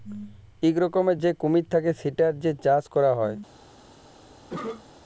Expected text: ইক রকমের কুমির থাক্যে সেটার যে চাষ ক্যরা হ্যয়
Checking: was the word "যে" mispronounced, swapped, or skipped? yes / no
no